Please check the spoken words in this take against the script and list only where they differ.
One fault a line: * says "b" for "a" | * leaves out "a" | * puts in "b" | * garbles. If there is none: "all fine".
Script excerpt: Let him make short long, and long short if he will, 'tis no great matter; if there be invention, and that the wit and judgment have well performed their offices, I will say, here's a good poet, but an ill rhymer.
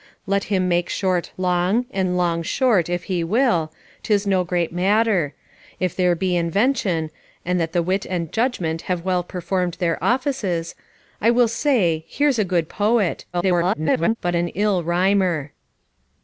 * garbles